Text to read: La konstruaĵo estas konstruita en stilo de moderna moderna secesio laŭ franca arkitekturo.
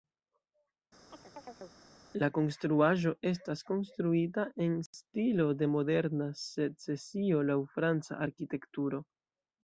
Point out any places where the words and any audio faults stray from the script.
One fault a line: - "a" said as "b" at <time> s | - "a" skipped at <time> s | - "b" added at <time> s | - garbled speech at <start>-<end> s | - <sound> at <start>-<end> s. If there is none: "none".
- chirp at 1.1-1.8 s
- "moderna" skipped at 6.3 s